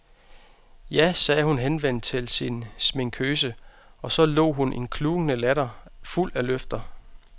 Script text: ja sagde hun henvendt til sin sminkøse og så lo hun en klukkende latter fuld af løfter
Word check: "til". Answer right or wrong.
right